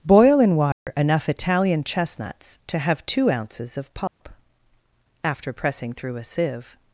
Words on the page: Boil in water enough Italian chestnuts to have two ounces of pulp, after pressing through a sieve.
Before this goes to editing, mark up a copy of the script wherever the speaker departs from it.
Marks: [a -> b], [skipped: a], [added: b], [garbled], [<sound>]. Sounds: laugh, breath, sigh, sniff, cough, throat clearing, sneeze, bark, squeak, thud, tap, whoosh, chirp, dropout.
Boil in water [dropout] enough Italian chestnuts to have two ounces of pulp, [dropout] after pressing through a sieve.